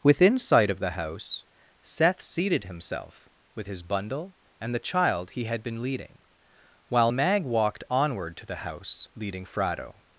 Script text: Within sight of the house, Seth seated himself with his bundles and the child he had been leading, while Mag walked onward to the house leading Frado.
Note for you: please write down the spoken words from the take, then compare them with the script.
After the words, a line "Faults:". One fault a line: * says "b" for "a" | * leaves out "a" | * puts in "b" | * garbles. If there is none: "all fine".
Within sight of the house, Seth seated himself with his bundle and the child he had been leading, while Mag walked onward to the house leading Frado.
Faults:
* says "bundle" for "bundles"